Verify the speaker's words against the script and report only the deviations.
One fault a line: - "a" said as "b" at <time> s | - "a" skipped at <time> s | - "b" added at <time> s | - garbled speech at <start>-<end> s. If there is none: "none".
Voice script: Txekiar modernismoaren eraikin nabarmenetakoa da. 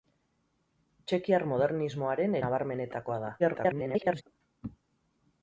- "eraikin" skipped at 2.4 s
- garbled speech at 3.4-4.2 s